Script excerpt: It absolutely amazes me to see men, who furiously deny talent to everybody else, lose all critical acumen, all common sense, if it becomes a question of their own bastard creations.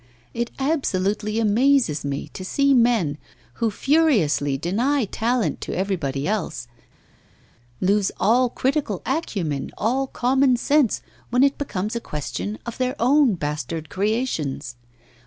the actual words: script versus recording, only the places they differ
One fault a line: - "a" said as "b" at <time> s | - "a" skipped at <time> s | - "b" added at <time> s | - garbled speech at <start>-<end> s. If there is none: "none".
- "if" said as "when" at 11.3 s